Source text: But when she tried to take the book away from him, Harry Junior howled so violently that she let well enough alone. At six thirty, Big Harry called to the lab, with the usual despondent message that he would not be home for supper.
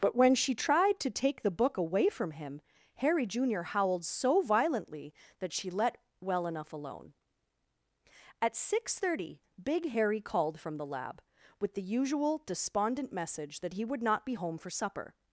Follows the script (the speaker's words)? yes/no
no